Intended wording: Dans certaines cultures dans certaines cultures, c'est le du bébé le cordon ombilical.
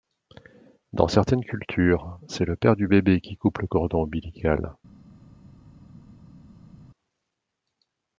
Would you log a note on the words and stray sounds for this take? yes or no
yes